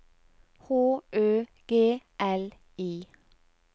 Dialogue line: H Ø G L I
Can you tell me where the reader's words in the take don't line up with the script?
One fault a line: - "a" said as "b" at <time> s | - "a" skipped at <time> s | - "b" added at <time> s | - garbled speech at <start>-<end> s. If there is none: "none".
none